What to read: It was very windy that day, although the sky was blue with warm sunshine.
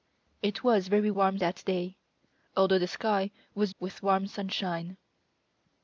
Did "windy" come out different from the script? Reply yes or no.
yes